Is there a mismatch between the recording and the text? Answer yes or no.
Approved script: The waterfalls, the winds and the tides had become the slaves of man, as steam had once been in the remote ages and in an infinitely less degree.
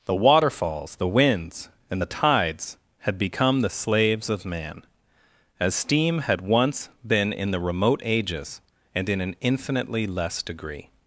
no